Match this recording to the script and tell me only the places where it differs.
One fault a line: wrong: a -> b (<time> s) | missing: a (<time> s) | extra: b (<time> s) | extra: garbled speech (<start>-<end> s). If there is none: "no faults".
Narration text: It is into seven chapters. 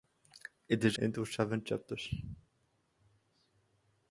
no faults